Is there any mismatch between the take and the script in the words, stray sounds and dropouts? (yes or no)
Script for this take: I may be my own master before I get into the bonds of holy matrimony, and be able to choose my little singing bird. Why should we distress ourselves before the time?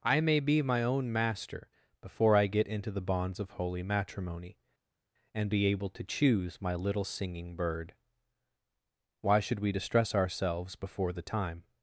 no